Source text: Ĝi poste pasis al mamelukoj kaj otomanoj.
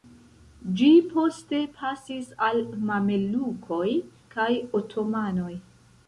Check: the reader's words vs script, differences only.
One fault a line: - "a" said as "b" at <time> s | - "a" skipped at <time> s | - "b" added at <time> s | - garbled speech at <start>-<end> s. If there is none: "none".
none